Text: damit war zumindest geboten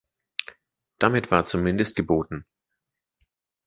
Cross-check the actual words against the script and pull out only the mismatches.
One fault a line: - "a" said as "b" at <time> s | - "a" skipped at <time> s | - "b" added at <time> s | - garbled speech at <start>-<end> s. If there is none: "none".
none